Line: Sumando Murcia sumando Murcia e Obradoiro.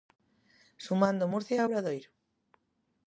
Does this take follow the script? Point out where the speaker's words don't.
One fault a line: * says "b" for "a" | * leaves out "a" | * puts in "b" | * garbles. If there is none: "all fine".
* leaves out "sumando Murcia"